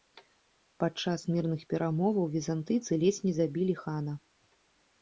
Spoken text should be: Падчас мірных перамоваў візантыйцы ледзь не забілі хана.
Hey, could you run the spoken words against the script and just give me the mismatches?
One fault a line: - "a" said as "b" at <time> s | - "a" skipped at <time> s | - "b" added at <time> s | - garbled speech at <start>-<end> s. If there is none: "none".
none